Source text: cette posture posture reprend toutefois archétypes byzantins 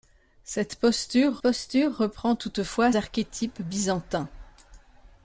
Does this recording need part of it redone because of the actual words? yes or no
no